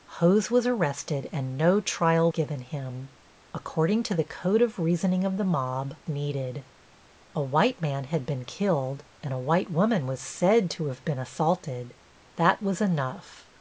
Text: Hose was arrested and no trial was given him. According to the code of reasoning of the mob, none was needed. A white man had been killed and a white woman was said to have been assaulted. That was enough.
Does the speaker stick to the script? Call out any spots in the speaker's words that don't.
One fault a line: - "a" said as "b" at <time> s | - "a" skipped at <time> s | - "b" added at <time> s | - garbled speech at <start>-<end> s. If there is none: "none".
- "was" skipped at 2.3 s
- "none was" skipped at 6.0 s